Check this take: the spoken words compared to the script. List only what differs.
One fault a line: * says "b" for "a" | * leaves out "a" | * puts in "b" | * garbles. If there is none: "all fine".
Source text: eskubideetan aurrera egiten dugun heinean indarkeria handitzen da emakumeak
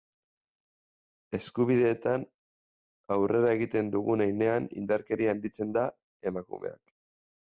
all fine